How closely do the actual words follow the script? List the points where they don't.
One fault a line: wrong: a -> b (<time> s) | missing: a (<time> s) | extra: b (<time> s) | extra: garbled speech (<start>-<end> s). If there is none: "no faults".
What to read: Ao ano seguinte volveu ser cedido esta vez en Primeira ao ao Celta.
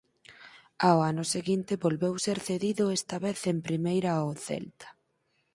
missing: ao (4.3 s)